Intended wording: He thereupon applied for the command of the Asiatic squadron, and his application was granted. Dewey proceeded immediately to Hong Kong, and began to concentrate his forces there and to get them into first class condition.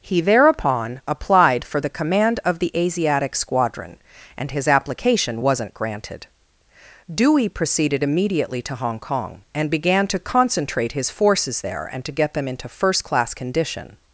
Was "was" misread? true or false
true